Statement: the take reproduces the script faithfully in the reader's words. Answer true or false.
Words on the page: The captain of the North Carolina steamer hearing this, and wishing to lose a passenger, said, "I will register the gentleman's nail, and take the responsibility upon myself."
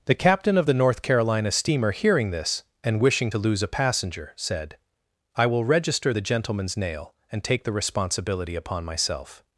true